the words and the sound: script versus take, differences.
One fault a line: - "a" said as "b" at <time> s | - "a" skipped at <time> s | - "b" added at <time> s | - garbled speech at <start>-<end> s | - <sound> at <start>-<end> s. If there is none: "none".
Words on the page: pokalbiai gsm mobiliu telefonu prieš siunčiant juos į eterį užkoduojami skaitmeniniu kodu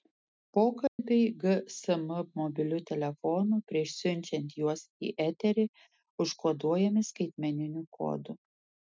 - dropout at 0.9-1.0 s